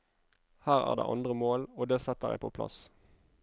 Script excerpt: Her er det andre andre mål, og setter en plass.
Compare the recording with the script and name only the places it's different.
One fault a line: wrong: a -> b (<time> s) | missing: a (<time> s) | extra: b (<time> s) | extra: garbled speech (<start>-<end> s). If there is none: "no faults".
missing: andre (1.3 s)
extra: det (1.9 s)
extra: på (2.4 s)